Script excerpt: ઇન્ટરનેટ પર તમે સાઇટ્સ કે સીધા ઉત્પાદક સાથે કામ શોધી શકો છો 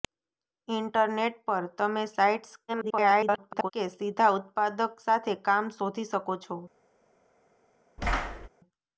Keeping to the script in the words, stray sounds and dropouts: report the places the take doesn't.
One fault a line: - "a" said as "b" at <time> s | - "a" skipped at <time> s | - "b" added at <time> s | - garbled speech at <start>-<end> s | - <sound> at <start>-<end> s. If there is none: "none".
- garbled speech at 2.7-3.7 s
- thud at 8.0-8.5 s